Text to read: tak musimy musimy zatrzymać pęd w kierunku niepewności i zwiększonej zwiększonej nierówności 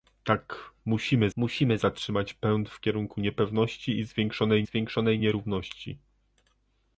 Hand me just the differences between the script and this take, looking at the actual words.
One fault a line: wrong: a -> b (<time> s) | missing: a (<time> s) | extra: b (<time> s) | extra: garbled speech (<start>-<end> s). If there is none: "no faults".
no faults